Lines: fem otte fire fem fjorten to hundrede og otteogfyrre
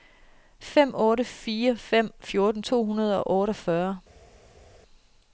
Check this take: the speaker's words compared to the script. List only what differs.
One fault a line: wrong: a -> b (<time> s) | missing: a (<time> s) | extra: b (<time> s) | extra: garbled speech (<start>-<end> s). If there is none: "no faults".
no faults